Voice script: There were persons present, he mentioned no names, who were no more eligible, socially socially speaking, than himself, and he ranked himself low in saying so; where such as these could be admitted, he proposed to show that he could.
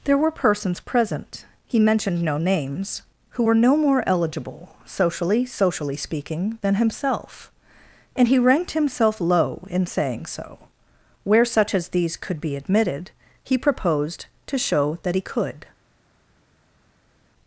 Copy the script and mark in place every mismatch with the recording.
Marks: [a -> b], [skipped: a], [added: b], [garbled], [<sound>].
There were persons present, he mentioned no names, who were no more eligible, socially socially speaking, than himself, and he ranked himself low in saying so; where such as these could be admitted, he proposed to show that he could.